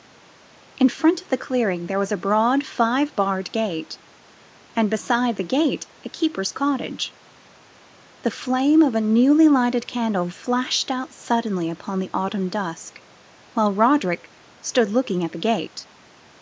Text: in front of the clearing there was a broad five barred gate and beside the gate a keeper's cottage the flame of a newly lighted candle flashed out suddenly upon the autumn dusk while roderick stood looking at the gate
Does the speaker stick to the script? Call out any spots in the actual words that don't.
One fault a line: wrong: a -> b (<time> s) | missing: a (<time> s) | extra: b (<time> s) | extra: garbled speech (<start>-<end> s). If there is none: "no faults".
no faults